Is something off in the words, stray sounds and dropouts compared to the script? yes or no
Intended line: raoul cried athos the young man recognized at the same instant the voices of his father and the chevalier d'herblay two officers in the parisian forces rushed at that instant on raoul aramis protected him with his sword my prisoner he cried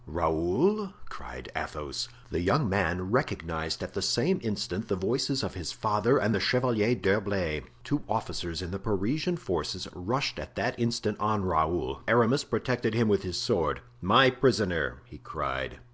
no